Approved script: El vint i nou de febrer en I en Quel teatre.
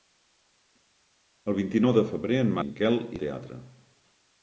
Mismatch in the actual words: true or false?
false